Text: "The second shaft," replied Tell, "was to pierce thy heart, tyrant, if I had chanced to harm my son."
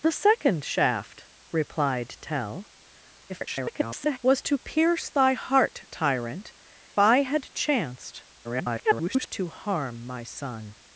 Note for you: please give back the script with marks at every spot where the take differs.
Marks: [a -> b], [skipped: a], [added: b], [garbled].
"The second shaft," replied Tell, [garbled] "was to pierce thy heart, tyrant, [skipped: if] I had chanced [garbled] to harm my son."